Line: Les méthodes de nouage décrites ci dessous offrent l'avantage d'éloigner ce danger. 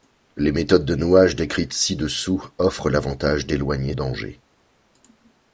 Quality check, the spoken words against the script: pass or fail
fail